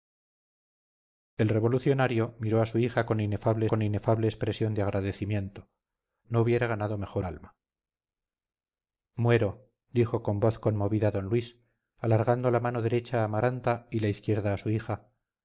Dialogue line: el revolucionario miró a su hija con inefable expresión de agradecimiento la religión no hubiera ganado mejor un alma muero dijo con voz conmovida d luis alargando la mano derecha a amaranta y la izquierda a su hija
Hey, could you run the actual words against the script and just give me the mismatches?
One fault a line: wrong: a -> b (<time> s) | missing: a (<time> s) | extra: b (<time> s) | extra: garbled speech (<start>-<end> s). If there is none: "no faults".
extra: con inefable (3.7 s)
missing: la religión (5.7 s)
missing: un (7.3 s)